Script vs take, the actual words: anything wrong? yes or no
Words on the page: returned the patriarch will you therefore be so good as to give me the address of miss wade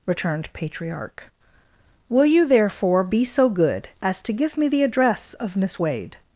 yes